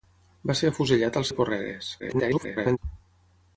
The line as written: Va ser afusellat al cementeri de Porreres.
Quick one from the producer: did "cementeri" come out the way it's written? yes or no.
no